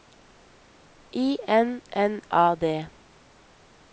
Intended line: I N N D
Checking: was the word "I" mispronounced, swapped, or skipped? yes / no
no